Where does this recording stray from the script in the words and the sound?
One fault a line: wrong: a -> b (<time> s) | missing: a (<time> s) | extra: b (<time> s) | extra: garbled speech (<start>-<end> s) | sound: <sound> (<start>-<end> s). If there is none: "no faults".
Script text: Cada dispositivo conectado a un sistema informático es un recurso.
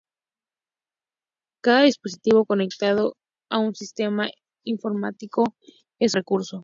missing: un (6.2 s)